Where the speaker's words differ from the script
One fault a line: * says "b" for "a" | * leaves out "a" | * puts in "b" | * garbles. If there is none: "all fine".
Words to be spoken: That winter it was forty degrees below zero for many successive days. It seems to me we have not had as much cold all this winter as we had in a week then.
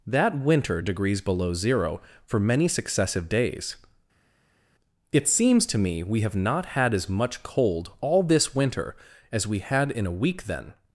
* leaves out "it was forty"